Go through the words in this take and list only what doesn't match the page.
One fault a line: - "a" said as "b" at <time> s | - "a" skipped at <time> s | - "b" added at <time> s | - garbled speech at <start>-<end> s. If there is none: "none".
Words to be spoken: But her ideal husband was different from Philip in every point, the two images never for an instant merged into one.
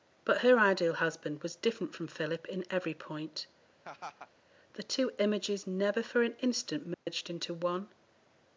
none